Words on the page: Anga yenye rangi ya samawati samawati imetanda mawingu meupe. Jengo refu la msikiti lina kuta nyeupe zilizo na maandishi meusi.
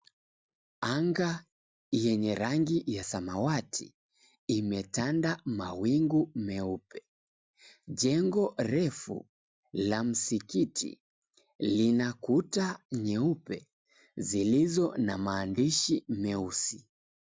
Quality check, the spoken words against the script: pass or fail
fail